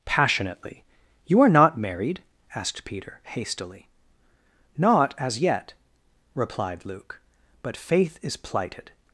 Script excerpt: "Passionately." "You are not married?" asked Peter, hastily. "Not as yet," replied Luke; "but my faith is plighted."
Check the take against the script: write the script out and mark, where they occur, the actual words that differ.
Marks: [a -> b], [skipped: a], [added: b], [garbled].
"Passionately." "You are not married?" asked Peter, hastily. "Not as yet," replied Luke; "but [skipped: my] faith is plighted."